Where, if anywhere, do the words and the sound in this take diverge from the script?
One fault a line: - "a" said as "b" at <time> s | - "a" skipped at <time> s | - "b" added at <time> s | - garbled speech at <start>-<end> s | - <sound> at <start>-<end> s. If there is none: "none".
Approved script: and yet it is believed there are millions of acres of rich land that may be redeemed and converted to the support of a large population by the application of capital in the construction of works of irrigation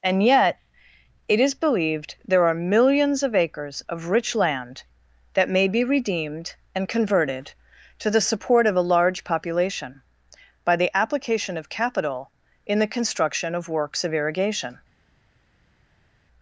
none